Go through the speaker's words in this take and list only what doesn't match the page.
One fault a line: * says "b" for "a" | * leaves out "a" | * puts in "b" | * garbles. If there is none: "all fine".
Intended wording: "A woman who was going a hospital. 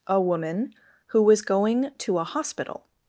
* puts in "to"